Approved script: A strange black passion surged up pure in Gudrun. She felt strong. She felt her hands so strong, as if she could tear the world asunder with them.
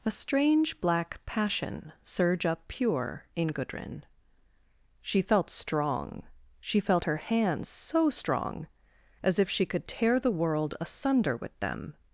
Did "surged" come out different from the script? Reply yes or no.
yes